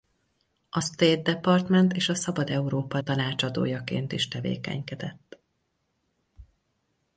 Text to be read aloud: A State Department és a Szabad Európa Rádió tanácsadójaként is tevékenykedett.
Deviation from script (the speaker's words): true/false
true